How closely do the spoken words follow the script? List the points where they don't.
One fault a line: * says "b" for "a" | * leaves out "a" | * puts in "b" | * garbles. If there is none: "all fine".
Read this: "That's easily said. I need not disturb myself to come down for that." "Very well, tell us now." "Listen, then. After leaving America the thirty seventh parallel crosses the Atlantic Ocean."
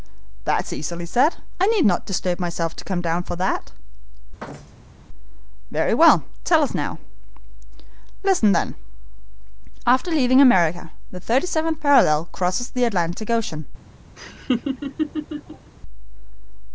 all fine